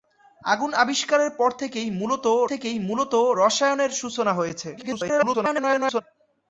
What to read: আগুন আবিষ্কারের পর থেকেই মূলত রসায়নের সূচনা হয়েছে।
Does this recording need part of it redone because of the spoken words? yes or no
yes